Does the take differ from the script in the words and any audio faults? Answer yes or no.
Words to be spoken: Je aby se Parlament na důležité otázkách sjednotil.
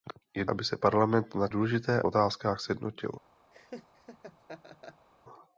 yes